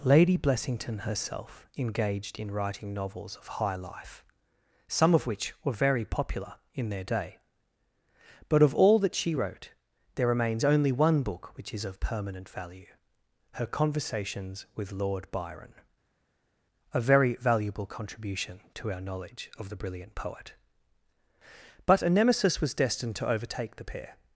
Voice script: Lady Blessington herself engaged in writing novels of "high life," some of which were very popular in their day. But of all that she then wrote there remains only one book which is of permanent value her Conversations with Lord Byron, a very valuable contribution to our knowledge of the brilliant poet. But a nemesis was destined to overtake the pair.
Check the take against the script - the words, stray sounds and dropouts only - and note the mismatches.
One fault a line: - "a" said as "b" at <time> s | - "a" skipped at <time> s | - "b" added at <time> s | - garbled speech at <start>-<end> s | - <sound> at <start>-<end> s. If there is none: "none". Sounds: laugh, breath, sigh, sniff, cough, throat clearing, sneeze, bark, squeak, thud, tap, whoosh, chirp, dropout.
- "then" skipped at 9.3 s